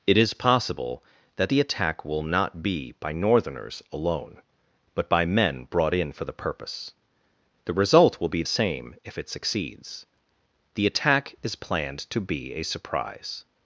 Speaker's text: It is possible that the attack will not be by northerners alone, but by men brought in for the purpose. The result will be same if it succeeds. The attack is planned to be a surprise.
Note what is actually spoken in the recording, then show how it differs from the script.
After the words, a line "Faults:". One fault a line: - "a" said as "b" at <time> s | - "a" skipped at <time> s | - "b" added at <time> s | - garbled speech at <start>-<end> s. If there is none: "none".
It is possible that the attack will not be by northerners alone, but by men brought in for the purpose. The result will be same if it succeeds. The attack is planned to be a surprise.
Faults:
none